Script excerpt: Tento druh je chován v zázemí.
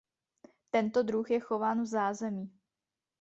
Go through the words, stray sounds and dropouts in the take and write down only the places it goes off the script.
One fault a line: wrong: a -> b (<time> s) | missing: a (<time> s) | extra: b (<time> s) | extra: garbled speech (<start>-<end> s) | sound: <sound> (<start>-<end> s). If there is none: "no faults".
no faults